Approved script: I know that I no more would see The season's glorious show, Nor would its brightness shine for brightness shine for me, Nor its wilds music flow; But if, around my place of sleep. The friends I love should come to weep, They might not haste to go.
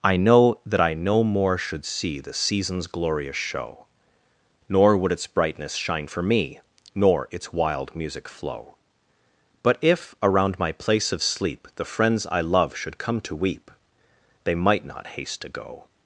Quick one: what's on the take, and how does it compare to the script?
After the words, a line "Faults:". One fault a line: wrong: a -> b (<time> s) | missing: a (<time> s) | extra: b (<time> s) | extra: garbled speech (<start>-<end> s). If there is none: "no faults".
I know that I no more should see The season's glorious show, Nor would its brightness shine for me, Nor its wild music flow; But if, around my place of sleep. The friends I love should come to weep, They might not haste to go.
Faults:
wrong: would -> should (1.6 s)
missing: brightness shine for (6.2 s)
wrong: wilds -> wild (7.5 s)